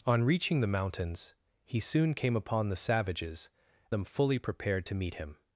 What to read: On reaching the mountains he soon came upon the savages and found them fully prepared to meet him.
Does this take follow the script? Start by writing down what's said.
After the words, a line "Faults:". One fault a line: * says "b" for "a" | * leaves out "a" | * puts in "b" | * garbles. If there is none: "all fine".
On reaching the mountains he soon came upon the savages them fully prepared to meet him.
Faults:
* leaves out "and found"